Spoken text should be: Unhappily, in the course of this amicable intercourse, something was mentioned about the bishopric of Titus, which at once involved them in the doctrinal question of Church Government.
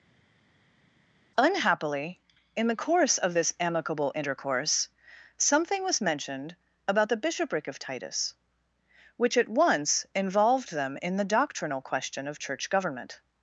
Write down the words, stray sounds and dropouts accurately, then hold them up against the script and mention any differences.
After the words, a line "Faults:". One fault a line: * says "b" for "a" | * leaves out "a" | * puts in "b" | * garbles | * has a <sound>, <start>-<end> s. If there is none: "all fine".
Unhappily, in the course of this amicable intercourse, something was mentioned about the bishopric of Titus, which at once involved them in the doctrinal question of Church Government.
Faults:
all fine